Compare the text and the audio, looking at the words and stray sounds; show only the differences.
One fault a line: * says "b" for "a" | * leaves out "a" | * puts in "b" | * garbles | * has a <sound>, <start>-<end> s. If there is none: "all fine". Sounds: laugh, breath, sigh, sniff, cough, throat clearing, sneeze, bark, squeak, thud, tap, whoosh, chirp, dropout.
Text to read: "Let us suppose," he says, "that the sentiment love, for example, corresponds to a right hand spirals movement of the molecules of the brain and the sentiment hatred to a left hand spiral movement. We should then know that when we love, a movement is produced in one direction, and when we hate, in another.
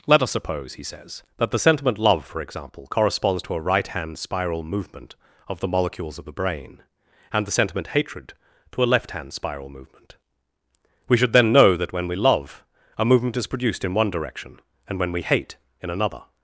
* says "spiral" for "spirals"